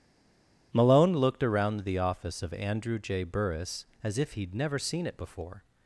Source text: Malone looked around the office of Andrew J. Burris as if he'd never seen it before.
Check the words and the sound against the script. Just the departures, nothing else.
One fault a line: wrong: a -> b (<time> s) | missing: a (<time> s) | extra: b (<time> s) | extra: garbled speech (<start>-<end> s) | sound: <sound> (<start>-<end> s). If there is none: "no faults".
no faults